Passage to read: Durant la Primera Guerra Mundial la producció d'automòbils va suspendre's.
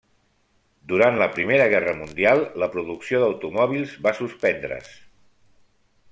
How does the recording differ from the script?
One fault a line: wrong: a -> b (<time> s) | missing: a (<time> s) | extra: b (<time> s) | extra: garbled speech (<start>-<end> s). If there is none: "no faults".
no faults